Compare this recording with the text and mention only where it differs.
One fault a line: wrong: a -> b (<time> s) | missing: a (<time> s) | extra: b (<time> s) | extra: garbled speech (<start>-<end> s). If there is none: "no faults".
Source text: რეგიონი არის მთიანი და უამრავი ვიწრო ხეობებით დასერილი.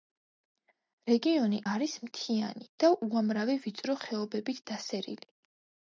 no faults